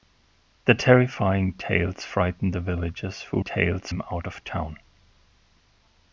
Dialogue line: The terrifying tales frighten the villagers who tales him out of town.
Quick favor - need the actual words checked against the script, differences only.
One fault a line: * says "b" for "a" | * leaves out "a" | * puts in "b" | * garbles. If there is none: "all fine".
all fine